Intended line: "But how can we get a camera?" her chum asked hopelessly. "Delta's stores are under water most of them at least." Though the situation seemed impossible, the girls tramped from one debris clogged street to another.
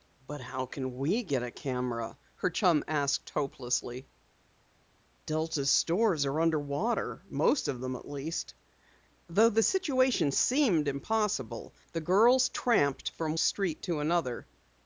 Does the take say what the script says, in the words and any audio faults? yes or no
no